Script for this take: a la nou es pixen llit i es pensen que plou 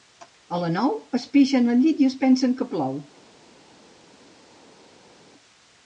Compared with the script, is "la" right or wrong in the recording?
right